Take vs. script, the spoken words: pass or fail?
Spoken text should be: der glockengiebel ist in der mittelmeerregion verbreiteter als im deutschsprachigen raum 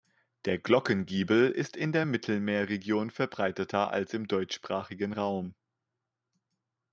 pass